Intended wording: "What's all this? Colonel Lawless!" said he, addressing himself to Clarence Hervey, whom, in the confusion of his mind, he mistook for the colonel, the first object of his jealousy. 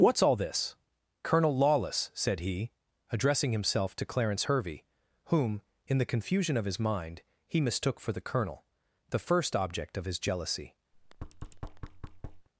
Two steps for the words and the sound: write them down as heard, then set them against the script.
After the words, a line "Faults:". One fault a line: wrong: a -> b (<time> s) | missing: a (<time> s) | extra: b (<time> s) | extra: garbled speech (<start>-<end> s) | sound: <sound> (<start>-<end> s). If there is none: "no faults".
"What's all this? Colonel Lawless!" said he, addressing himself to Clarence Hervey, whom, in the confusion of his mind, he mistook for the colonel, the first object of his jealousy.
Faults:
sound: thud (10.9-12.5 s)